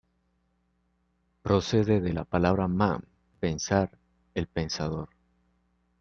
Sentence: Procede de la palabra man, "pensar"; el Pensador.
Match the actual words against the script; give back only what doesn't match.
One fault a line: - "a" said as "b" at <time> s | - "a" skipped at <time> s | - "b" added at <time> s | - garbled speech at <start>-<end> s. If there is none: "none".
none